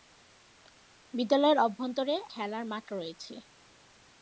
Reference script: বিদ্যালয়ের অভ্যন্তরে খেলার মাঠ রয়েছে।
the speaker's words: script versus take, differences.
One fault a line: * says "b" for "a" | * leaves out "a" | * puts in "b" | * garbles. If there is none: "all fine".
all fine